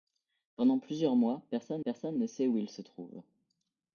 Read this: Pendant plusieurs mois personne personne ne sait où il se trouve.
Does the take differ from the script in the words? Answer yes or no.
no